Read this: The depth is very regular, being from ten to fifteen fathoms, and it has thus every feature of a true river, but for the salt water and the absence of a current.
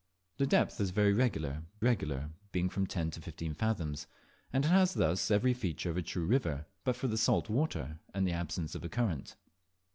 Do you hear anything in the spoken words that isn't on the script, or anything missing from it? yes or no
yes